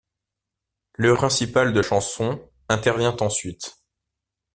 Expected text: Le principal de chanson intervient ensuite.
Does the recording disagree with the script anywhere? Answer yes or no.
no